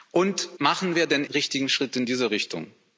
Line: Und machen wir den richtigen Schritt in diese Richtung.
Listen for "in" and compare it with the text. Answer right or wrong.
right